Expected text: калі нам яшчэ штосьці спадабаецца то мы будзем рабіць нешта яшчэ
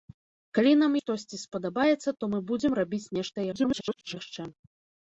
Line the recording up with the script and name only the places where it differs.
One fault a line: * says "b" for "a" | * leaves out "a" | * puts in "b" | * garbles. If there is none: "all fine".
* leaves out "яшчэ"
* garbles